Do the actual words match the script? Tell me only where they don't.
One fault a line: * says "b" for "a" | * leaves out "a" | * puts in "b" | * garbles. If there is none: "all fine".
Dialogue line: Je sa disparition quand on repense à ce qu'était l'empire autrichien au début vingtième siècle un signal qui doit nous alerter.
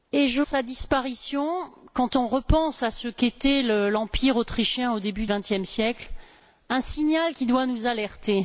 all fine